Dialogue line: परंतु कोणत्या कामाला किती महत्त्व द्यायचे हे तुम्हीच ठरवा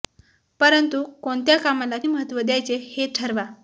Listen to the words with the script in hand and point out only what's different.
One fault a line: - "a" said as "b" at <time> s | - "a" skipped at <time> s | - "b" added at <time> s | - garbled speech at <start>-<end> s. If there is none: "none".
- "किती" skipped at 2.0 s
- "तुम्हीच" skipped at 3.1 s